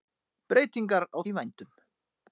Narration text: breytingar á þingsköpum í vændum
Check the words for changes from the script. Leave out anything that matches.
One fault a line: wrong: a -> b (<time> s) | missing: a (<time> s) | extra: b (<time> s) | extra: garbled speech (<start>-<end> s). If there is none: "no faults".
missing: þingsköpum (1.2 s)